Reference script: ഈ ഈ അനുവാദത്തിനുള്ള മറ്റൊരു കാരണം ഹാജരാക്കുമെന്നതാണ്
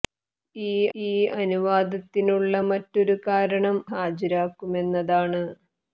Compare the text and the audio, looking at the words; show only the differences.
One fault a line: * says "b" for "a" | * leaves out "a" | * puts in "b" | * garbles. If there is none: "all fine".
all fine